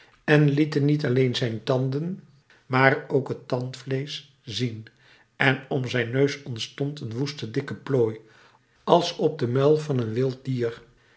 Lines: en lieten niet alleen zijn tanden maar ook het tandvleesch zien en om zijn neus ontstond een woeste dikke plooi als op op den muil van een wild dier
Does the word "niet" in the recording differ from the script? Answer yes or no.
no